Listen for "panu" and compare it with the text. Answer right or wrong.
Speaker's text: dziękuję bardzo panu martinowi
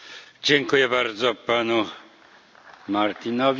right